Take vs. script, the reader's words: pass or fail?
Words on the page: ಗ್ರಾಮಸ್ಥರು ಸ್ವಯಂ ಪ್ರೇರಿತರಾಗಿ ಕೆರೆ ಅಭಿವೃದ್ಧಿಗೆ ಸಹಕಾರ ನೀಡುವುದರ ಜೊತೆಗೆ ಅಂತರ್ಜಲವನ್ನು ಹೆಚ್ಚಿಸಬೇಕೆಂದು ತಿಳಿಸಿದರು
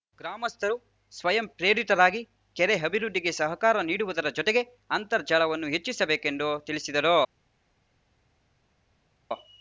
pass